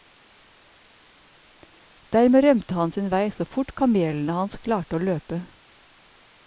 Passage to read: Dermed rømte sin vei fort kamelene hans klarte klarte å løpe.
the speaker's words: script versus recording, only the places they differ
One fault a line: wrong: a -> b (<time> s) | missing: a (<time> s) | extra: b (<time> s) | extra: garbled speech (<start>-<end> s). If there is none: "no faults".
extra: han (2.8 s)
extra: så (3.4 s)
missing: klarte (5.0 s)